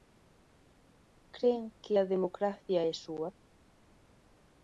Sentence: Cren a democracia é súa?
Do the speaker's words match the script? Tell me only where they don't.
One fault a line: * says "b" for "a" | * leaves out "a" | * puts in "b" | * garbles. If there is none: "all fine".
* puts in "que"